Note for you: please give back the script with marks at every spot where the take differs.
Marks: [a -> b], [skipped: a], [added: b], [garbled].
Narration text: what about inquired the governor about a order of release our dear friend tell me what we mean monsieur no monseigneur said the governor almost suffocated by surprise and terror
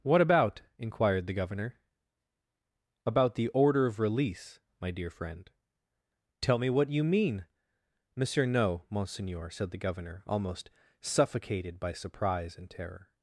what about inquired the governor about [a -> the] order of release [our -> my] dear friend tell me what [we -> you] mean monsieur no monseigneur said the governor almost suffocated by surprise and terror